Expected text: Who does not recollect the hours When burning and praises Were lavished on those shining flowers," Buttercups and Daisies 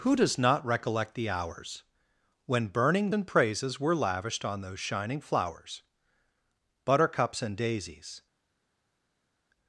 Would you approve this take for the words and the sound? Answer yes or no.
yes